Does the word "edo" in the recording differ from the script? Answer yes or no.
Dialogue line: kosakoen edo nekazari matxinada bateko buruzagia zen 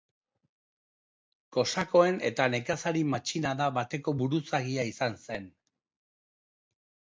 yes